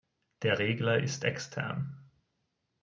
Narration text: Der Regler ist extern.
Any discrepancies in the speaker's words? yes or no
no